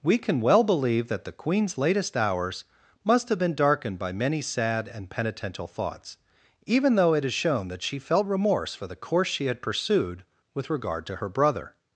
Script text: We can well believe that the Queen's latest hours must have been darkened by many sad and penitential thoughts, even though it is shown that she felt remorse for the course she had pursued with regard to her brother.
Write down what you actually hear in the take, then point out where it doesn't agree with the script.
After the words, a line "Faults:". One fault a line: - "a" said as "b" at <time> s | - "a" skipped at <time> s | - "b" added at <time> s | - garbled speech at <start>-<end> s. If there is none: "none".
We can well believe that the Queen's latest hours must have been darkened by many sad and penitential thoughts, even though it is shown that she felt remorse for the course she had pursued with regard to her brother.
Faults:
none